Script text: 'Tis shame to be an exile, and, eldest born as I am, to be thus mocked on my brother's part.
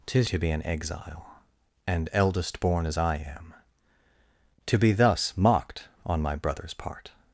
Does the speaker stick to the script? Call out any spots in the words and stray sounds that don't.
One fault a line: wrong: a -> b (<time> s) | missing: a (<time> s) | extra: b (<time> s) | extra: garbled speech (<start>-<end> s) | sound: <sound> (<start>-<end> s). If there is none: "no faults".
missing: shame (0.3 s)